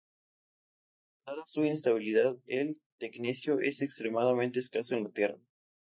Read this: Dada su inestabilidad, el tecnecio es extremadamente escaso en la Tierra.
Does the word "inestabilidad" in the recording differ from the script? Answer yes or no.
no